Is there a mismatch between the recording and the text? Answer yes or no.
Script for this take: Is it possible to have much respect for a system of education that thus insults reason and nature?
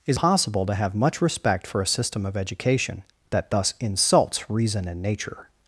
yes